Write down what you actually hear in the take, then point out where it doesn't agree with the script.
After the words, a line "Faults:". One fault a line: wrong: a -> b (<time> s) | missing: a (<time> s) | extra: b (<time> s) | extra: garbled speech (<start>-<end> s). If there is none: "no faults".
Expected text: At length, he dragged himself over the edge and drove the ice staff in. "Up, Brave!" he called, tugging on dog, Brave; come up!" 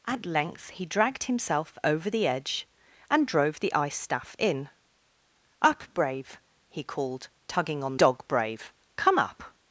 At length, he dragged himself over the edge and drove the ice staff in. "Up, Brave!" he called, tugging on dog, Brave; come up!"
Faults:
no faults